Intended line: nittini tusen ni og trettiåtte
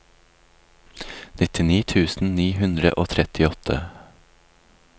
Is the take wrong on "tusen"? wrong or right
right